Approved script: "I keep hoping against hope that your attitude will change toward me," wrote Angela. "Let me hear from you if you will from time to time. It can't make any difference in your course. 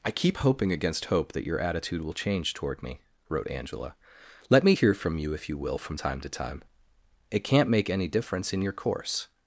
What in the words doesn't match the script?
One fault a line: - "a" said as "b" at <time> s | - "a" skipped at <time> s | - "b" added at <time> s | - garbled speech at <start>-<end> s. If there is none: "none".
none